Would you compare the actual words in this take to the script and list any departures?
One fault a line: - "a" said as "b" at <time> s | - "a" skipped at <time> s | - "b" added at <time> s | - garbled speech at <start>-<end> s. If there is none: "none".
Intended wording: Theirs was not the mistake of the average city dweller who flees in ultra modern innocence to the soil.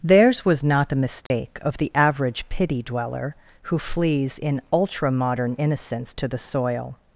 - "city" said as "pity" at 2.5 s